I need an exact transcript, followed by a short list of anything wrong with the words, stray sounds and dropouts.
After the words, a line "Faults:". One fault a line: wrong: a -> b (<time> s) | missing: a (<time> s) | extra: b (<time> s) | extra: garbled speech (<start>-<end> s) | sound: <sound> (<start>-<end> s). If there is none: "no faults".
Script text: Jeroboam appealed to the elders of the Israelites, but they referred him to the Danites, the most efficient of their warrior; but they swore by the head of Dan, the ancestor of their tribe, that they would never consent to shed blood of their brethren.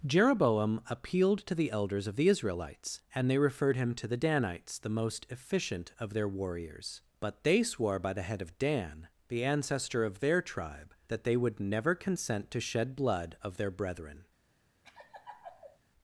Jeroboam appealed to the elders of the Israelites, and they referred him to the Danites, the most efficient of their warriors; but they swore by the head of Dan, the ancestor of their tribe, that they would never consent to shed blood of their brethren.
Faults:
wrong: but -> and (3.1 s)
wrong: warrior -> warriors (6.3 s)
sound: laugh (14.8-15.8 s)